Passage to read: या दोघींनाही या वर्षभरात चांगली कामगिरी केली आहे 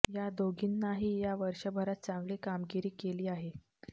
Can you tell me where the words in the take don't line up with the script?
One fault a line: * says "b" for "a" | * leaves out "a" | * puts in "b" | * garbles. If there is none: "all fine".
all fine